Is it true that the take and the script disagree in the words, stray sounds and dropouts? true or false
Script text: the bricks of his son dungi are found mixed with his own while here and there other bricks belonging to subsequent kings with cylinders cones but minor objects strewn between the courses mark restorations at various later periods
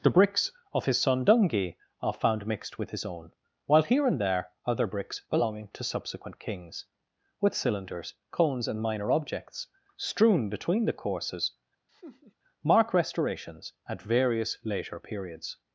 true